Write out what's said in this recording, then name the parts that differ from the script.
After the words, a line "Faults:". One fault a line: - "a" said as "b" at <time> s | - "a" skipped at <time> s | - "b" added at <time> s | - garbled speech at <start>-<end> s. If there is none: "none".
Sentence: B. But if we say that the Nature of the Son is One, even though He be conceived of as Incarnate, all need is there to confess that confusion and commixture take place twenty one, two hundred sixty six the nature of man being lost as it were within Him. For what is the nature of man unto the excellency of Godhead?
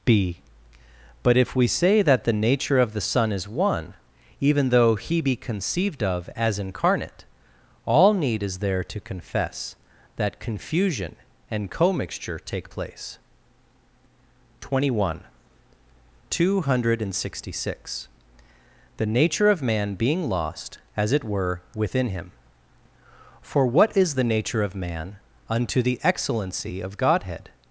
B. But if we say that the Nature of the Son is One, even though He be conceived of as Incarnate, all need is there to confess that confusion and commixture take place twenty one, two hundred sixty six the nature of man being lost as it were within Him. For what is the nature of man unto the excellency of Godhead?
Faults:
none